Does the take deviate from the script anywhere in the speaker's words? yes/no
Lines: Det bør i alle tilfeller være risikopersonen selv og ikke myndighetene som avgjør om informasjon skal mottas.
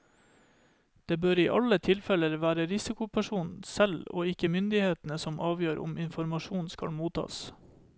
no